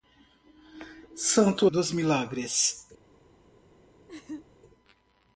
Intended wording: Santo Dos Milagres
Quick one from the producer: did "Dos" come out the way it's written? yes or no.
yes